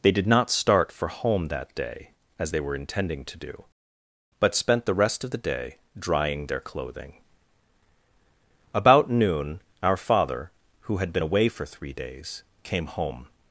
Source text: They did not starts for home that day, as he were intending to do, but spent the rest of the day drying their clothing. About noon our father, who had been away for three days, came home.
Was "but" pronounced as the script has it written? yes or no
yes